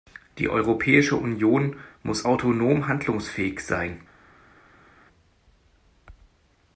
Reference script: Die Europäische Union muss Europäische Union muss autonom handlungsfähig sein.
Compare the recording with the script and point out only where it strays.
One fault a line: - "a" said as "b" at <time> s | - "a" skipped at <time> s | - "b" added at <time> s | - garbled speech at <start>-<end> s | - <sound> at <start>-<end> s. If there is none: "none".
- "Europäische Union muss" skipped at 2.3 s